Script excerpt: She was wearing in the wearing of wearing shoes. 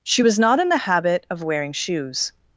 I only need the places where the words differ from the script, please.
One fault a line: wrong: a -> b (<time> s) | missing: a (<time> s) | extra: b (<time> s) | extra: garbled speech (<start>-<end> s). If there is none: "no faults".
wrong: wearing -> not (0.4 s)
wrong: wearing -> habit (0.8 s)